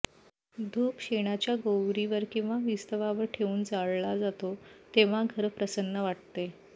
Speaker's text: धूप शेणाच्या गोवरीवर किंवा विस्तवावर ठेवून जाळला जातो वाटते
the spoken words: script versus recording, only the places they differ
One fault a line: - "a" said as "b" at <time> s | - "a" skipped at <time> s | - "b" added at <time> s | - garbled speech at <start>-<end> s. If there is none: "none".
- "तेव्हा घर प्रसन्न" added at 4.9 s